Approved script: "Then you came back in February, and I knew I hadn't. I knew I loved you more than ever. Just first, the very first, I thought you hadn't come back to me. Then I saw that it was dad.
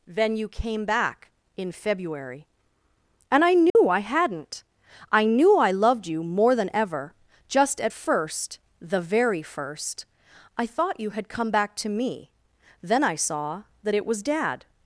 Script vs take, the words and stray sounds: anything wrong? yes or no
yes